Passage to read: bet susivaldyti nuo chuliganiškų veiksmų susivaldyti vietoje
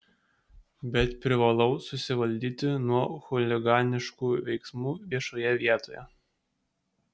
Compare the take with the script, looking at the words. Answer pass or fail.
fail